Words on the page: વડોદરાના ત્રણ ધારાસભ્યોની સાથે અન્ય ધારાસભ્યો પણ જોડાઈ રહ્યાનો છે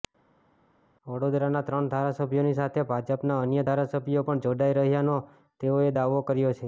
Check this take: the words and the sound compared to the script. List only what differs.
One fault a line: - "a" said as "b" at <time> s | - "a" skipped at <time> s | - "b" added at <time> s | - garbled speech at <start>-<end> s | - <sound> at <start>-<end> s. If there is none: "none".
- "ભાજપના" added at 2.9 s
- "તેઓએ દાવો કર્યો" added at 5.6 s